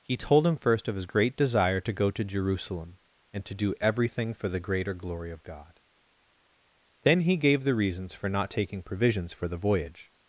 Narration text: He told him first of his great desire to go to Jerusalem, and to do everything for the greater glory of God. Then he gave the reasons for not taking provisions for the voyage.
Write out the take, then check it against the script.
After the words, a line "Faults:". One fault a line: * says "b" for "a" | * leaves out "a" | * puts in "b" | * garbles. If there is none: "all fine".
He told him first of his great desire to go to Jerusalem, and to do everything for the greater glory of God. Then he gave the reasons for not taking provisions for the voyage.
Faults:
all fine